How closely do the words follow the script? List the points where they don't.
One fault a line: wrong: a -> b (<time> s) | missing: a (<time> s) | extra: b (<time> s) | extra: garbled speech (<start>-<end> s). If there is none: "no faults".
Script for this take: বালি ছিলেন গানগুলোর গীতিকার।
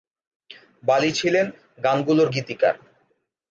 no faults